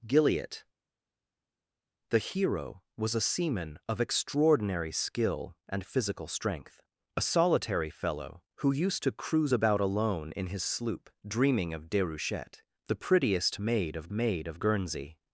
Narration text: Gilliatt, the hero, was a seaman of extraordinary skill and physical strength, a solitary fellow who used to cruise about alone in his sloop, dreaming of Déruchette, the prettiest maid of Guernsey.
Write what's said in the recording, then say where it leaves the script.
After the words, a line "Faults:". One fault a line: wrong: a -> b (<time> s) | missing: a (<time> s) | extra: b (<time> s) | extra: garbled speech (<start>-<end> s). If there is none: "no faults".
Gilliatt, the hero, was a seaman of extraordinary skill and physical strength, a solitary fellow who used to cruise about alone in his sloop, dreaming of Déruchette, the prettiest maid of maid of Guernsey.
Faults:
extra: maid of (14.1 s)